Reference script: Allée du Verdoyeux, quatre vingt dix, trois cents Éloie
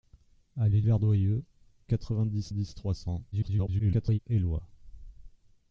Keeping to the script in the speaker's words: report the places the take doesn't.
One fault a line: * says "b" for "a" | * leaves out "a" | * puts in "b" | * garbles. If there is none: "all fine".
* leaves out "du"
* puts in "dix"
* garbles